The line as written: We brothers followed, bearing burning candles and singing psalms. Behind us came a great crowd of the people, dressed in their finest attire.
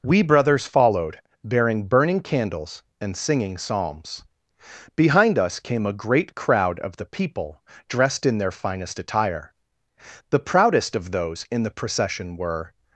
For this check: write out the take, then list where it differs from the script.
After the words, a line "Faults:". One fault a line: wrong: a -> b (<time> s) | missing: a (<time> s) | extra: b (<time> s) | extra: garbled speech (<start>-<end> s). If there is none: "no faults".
We brothers followed, bearing burning candles and singing psalms. Behind us came a great crowd of the people, dressed in their finest attire. The proudest of those in the procession were
Faults:
extra: The proudest of those in the procession were (10.3 s)